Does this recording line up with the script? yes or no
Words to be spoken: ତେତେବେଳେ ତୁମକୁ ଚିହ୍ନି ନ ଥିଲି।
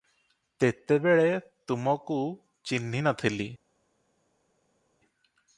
yes